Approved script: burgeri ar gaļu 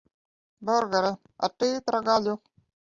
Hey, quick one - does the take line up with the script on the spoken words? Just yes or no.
no